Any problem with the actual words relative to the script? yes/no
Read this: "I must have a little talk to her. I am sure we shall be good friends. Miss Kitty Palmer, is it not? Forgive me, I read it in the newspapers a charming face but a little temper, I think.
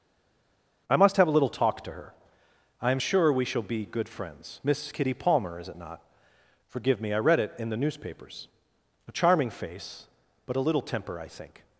no